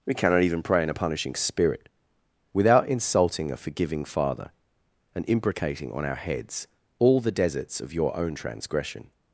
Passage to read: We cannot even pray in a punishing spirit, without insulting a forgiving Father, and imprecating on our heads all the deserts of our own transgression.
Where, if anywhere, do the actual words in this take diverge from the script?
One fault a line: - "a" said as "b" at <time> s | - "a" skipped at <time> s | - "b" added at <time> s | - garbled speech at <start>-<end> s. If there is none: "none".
- "our" said as "your" at 7.9 s